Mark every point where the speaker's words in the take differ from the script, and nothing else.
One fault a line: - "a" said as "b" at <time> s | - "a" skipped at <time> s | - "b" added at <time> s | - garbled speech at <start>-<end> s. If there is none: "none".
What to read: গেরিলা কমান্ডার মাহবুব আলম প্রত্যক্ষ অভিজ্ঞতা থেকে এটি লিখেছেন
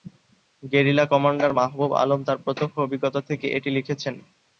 - "তার" added at 2.2 s